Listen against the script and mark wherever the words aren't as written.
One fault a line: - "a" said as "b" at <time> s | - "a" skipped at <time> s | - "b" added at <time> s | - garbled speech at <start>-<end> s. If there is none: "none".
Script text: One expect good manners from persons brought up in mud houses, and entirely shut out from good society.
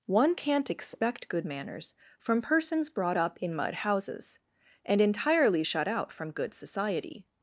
- "can't" added at 0.3 s